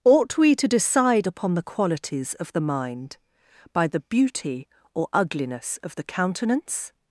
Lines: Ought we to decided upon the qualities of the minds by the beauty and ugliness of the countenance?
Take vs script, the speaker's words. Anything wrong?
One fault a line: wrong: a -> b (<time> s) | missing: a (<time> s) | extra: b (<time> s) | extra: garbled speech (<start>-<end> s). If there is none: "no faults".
wrong: decided -> decide (0.7 s)
wrong: minds -> mind (2.6 s)
wrong: and -> or (5.0 s)